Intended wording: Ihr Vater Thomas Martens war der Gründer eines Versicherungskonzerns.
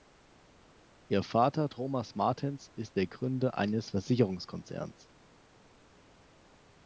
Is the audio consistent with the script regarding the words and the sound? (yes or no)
no